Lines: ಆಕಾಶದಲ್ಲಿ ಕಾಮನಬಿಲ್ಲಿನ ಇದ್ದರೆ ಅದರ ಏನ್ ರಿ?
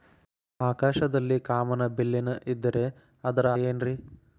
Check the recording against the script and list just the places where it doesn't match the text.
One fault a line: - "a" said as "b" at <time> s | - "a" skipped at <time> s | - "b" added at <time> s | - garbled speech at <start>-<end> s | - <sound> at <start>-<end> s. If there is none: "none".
none